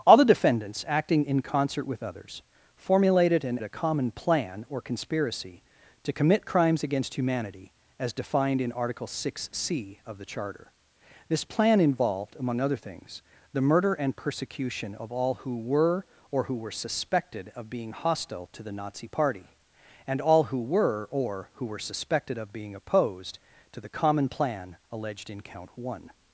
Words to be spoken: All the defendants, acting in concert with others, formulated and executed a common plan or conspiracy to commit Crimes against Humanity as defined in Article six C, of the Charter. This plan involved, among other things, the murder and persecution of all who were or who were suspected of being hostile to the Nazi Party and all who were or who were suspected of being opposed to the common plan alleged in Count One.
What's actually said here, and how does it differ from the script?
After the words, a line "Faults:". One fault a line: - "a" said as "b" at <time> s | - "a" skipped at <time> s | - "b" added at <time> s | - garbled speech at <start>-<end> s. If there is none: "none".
All the defendants, acting in concert with others, formulated and a common plan or conspiracy to commit Crimes against Humanity as defined in Article six C, of the Charter. This plan involved, among other things, the murder and persecution of all who were or who were suspected of being hostile to the Nazi Party and all who were or who were suspected of being opposed to the common plan alleged in Count One.
Faults:
- "executed" skipped at 3.6 s